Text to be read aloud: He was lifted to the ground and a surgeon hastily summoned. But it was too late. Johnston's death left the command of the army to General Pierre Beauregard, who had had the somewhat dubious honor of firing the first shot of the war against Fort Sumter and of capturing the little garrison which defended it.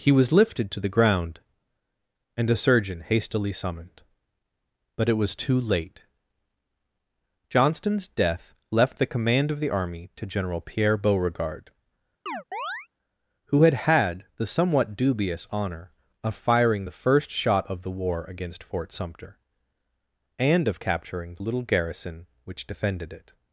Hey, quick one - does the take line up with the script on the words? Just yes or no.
yes